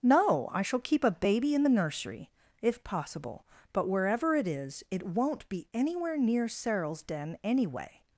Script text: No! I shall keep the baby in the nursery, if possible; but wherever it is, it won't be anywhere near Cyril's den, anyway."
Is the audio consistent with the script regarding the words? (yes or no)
no